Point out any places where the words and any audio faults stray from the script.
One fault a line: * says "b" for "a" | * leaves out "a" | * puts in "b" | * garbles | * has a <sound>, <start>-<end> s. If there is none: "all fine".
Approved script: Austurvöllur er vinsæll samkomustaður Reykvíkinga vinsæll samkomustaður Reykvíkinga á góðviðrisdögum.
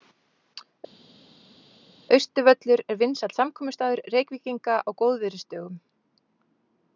* leaves out "vinsæll samkomustaður Reykvíkinga"